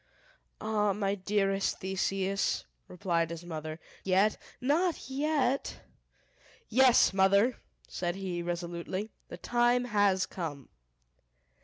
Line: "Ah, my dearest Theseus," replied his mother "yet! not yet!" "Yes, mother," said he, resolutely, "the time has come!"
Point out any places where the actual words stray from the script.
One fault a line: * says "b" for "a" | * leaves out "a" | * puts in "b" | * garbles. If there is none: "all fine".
all fine